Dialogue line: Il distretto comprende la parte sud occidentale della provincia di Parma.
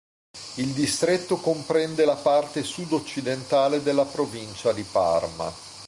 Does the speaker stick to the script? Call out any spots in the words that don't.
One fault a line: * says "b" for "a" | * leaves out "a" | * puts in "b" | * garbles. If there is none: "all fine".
all fine